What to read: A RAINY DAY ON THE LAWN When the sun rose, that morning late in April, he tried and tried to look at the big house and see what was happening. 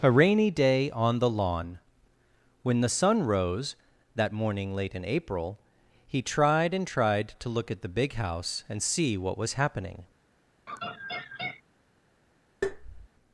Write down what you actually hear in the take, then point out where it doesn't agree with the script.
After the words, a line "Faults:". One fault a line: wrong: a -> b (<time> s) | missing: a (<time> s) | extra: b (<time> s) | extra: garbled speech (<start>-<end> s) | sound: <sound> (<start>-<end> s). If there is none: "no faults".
A RAINY DAY ON THE LAWN When the sun rose, that morning late in April, he tried and tried to look at the big house and see what was happening.
Faults:
sound: laugh (10.7-11.6 s)
sound: tap (12.6-13.1 s)